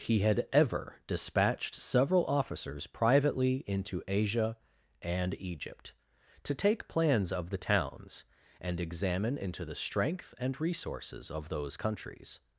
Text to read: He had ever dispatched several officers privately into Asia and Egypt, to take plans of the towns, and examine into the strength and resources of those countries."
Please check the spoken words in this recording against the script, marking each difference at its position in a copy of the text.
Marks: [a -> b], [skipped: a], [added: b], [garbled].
He had ever dispatched several officers privately into Asia and Egypt, to take plans of the towns, and examine into the strength and resources of those countries."